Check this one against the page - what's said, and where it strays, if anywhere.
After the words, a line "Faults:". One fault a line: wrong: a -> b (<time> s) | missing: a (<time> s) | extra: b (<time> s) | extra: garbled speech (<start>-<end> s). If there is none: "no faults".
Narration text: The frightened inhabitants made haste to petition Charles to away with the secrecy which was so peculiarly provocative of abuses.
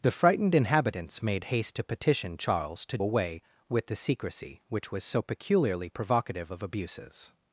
The frightened inhabitants made haste to petition Charles to away with the secrecy which was so peculiarly provocative of abuses.
Faults:
no faults